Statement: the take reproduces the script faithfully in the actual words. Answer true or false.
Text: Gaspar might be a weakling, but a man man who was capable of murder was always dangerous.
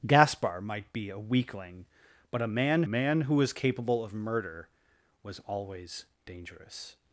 true